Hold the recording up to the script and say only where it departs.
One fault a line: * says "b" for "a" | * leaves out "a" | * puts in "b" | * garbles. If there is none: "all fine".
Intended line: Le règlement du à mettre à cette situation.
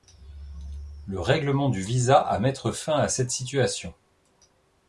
* puts in "visa"
* puts in "fin"